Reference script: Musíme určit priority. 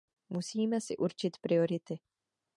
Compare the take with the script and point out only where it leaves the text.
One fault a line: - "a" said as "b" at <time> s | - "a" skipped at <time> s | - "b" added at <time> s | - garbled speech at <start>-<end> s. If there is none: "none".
- "si" added at 0.8 s